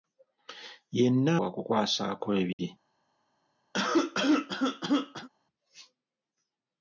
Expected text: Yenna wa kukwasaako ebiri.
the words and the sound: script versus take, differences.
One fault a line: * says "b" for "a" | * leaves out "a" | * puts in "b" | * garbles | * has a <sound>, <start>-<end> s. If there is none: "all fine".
* has a dropout, 2.5-2.6 s
* has a cough, 3.7-5.3 s